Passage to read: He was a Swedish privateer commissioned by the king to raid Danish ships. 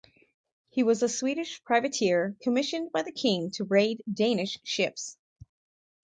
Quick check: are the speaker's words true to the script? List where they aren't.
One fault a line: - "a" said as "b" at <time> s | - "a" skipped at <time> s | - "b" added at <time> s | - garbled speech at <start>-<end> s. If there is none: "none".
none